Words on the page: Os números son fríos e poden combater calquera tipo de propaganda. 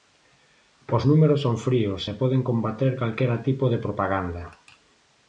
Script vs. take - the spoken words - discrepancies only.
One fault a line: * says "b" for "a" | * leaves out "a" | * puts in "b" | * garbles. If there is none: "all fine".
all fine